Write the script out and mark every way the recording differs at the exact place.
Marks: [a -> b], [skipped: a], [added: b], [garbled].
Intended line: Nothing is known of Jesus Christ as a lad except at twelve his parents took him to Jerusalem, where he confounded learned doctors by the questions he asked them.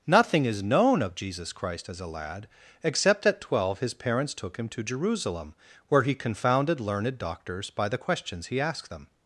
Nothing is known of Jesus Christ as a lad except at twelve his parents took him to Jerusalem, where he confounded learned doctors by the questions he asked them.